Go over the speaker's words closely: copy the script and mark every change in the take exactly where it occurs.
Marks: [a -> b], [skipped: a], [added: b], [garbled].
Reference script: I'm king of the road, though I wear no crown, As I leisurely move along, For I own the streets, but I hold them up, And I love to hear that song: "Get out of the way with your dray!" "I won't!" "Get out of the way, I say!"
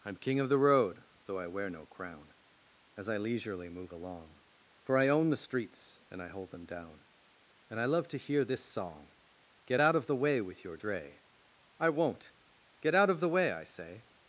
I'm king of the road, though I wear no crown, As I leisurely move along, For I own the streets, [but -> and] I hold them [up, -> down] And I love to hear [that -> this] song: "Get out of the way with your dray!" "I won't!" "Get out of the way, I say!"